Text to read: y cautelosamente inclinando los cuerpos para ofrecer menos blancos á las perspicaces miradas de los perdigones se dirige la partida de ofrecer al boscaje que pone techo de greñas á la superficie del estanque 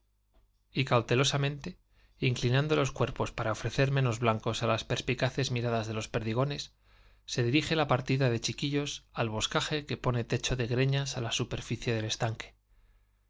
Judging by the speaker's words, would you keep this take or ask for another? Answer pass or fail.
fail